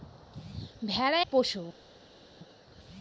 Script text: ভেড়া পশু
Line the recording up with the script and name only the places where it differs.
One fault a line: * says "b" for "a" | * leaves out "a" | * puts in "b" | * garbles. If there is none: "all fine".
all fine